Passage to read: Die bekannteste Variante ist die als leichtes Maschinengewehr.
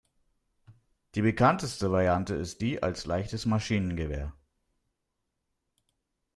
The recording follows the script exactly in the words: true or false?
true